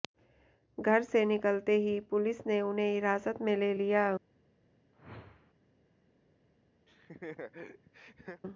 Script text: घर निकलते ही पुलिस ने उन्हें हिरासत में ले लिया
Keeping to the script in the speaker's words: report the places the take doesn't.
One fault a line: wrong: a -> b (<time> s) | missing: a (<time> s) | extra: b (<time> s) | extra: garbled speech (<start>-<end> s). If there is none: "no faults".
extra: से (1.0 s)